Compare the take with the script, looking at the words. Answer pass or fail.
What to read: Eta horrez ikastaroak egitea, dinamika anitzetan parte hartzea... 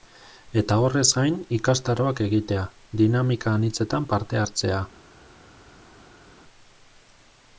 fail